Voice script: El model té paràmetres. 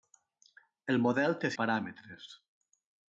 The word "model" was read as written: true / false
true